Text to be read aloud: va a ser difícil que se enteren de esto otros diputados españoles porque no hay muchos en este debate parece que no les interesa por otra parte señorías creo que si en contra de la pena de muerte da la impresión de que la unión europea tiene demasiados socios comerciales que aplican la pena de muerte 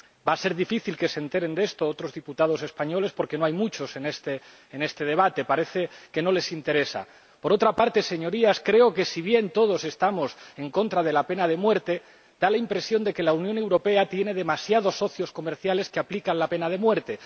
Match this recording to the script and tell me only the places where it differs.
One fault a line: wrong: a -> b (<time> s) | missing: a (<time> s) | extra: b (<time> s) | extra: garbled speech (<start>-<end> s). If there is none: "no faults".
extra: bien todos estamos (9.2 s)